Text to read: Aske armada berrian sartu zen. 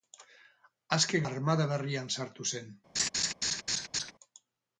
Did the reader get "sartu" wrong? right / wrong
right